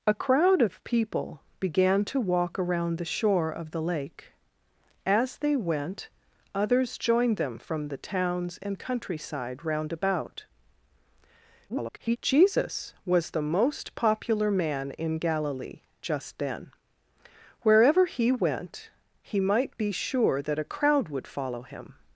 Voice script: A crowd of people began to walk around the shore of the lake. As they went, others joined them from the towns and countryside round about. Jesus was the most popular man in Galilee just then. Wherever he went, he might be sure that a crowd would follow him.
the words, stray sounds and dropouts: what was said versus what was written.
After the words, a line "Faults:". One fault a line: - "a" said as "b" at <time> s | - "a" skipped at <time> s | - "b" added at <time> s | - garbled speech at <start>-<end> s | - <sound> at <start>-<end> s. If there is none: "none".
A crowd of people began to walk around the shore of the lake. As they went, others joined them from the towns and countryside round about. [garbled] Jesus was the most popular man in Galilee just then. Wherever he went, he might be sure that a crowd would follow him.
Faults:
- garbled speech at 11.7-12.2 s